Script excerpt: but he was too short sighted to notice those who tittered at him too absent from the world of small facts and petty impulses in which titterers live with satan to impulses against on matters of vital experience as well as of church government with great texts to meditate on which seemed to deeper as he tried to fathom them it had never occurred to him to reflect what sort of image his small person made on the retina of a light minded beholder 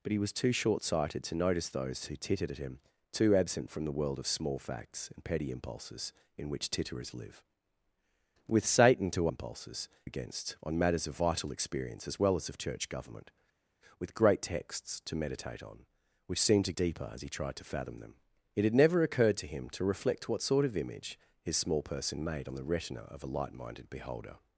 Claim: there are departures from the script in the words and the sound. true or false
false